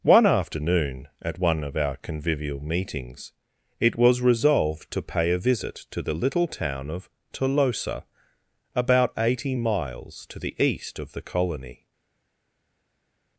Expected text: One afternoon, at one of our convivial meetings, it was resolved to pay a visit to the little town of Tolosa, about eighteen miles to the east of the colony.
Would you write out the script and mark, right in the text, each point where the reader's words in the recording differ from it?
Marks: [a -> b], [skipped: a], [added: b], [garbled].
One afternoon, at one of our convivial meetings, it was resolved to pay a visit to the little town of Tolosa, about [eighteen -> eighty] miles to the east of the colony.